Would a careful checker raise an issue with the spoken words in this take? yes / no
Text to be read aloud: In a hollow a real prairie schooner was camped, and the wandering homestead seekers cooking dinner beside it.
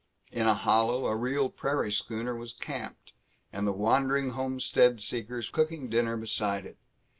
no